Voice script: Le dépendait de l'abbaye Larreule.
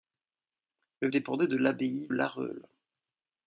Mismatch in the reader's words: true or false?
false